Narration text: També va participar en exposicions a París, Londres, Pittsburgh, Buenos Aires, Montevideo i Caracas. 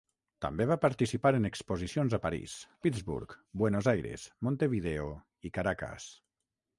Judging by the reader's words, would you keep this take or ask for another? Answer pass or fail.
fail